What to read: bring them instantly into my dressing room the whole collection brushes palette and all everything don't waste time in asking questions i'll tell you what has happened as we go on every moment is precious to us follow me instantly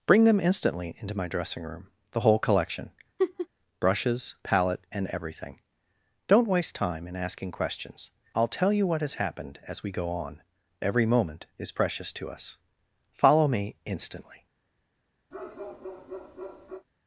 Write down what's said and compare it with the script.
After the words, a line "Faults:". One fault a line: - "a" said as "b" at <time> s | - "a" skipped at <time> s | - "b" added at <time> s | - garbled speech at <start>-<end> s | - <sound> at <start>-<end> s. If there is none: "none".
bring them instantly into my dressing room the whole collection brushes palette and everything don't waste time in asking questions i'll tell you what has happened as we go on every moment is precious to us follow me instantly
Faults:
- laugh at 3.2-3.5 s
- "all" skipped at 5.1 s
- bark at 15.3-16.9 s